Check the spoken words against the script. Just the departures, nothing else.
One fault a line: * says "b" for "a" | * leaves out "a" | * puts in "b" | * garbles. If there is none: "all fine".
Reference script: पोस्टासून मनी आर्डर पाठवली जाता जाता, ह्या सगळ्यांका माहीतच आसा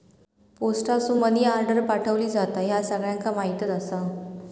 * leaves out "जाता"